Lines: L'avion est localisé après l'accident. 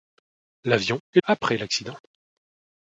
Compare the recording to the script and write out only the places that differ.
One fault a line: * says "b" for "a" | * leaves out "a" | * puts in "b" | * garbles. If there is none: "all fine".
* leaves out "localisé"